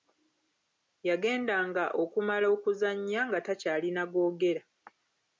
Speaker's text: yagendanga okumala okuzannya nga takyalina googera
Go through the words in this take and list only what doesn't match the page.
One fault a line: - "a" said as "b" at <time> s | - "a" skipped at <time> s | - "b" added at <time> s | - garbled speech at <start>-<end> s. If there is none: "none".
none